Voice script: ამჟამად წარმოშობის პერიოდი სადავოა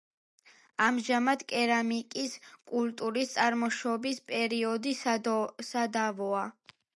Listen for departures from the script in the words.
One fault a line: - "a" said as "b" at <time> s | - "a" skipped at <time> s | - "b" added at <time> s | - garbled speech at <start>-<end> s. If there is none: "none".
- "კერამიკის კულტურის" added at 1.5 s